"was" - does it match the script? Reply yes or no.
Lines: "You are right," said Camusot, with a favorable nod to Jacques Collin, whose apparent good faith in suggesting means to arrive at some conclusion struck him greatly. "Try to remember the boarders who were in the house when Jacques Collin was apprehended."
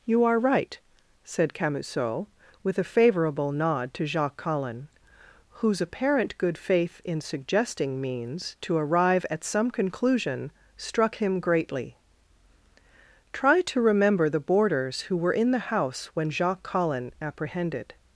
no